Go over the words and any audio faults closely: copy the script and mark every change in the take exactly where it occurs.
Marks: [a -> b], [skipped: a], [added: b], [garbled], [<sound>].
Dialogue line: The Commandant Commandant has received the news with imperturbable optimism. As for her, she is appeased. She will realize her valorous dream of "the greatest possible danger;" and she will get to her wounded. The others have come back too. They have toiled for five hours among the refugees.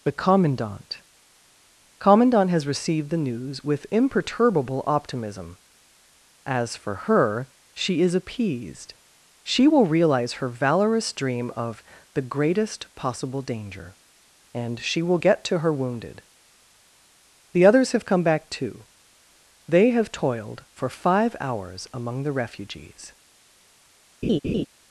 The Commandant Commandant has received the news with imperturbable optimism. As for her, she is appeased. She will realize her valorous dream of "the greatest possible danger;" and she will get to her wounded. The others have come back too. They have toiled for five hours among the refugees. [laugh]